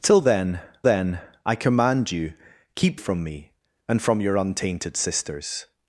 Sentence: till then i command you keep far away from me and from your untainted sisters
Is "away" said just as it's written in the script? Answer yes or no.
no